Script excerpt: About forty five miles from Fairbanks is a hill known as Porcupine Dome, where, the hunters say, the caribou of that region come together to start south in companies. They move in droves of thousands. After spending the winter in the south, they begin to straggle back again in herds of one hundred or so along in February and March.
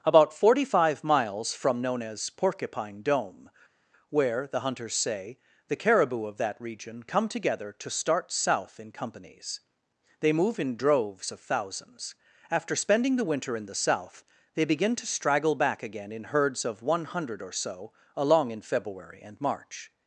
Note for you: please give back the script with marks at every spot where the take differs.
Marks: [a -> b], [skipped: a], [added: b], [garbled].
About forty five miles from [skipped: Fairbanks is a hill] known as Porcupine Dome, where, the hunters say, the caribou of that region come together to start south in companies. They move in droves of thousands. After spending the winter in the south, they begin to straggle back again in herds of one hundred or so along in February and March.